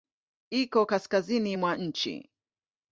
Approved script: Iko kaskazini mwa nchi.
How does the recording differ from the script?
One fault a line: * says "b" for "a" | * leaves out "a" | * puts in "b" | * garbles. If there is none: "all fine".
all fine